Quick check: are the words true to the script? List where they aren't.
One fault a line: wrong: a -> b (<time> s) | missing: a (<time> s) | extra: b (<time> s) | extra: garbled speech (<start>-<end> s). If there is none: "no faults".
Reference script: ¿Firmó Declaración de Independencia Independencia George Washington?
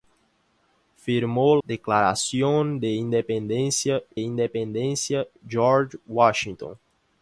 no faults